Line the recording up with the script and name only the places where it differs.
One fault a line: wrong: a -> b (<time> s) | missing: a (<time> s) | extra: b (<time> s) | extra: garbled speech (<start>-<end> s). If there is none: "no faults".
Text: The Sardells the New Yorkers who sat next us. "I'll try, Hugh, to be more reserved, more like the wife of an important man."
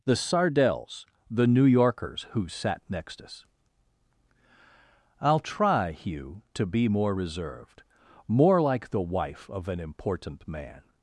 no faults